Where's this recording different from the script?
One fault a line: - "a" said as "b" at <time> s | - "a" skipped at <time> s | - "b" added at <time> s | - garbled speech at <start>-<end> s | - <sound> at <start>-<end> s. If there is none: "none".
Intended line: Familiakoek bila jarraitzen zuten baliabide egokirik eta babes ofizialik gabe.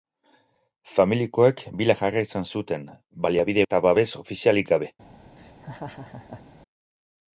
- "egokirik" skipped at 3.7 s
- laugh at 5.4-6.4 s